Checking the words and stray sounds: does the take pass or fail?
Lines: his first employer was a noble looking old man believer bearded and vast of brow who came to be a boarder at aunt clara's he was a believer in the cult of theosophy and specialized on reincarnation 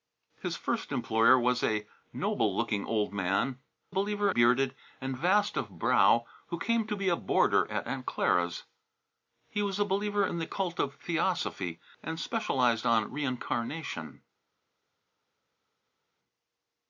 pass